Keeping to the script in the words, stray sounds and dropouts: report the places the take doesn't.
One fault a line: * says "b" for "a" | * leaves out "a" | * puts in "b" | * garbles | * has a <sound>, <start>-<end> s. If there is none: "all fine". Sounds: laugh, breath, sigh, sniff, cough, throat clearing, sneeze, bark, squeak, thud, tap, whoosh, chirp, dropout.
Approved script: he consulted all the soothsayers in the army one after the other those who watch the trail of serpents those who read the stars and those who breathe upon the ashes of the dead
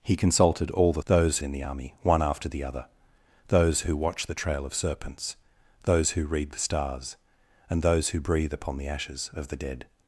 * says "those" for "soothsayers"